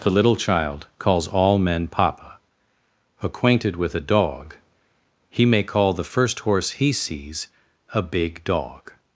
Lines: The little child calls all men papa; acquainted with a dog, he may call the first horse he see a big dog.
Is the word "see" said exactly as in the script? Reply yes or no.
no